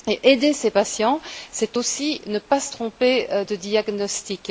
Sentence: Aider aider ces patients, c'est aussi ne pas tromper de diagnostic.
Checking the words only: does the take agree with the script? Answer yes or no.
no